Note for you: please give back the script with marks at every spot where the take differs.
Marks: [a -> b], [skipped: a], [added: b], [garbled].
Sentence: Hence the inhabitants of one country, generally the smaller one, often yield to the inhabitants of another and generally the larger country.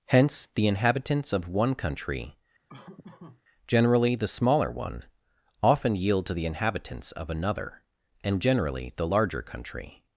Hence the inhabitants of one country, generally the smaller one, often yield to the inhabitants of another and generally the larger country.